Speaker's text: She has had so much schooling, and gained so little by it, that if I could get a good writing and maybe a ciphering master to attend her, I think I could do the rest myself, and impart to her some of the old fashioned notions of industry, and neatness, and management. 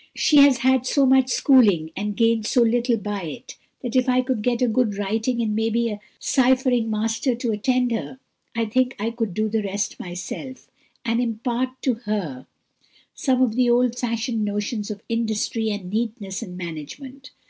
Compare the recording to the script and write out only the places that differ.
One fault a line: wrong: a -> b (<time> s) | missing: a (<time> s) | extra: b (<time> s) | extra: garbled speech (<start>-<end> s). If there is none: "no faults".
no faults